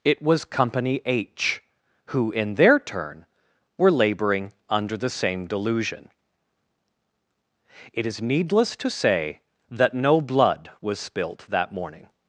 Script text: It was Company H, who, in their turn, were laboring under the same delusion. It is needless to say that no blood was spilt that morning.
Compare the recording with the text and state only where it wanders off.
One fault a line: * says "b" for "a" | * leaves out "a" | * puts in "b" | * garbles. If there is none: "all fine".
all fine